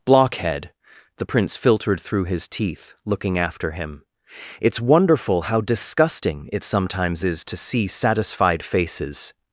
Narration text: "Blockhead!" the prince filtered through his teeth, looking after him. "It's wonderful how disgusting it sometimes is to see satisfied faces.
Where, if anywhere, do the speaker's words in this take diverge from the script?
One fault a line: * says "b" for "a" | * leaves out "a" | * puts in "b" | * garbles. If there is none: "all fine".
all fine